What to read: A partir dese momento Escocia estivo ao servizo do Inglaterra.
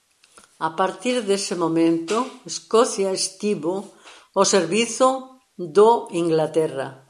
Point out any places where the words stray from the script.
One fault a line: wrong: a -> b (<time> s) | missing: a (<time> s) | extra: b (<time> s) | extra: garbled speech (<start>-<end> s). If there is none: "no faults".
no faults